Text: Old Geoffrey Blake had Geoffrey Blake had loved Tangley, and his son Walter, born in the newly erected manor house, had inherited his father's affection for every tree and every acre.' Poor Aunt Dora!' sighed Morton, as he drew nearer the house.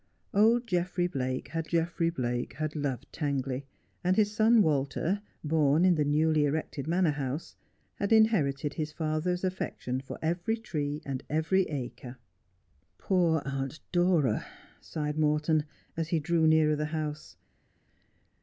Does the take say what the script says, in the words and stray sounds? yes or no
yes